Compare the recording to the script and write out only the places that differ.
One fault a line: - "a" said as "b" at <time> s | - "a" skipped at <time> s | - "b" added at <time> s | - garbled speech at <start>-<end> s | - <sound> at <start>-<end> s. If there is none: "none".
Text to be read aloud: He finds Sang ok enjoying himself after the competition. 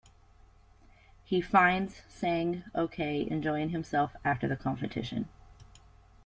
none